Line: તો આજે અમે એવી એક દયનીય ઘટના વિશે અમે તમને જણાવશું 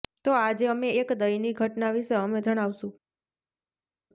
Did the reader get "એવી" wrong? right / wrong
wrong